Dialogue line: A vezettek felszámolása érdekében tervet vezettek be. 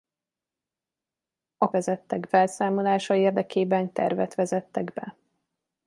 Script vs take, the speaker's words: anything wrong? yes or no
no